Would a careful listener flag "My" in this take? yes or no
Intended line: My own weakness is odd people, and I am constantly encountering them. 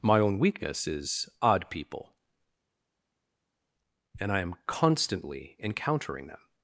no